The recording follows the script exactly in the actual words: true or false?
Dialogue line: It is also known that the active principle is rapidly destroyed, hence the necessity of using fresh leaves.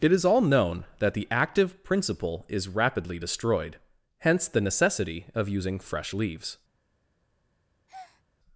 false